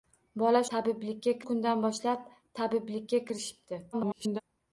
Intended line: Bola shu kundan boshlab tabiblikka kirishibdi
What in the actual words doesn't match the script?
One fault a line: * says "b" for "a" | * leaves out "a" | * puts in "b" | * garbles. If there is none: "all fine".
* says "tabiblikka" for "shu"
* garbles